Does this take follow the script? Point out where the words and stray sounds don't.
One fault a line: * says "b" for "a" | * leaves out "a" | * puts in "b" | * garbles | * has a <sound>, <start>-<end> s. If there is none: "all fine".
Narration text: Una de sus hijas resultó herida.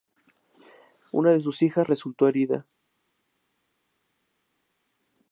all fine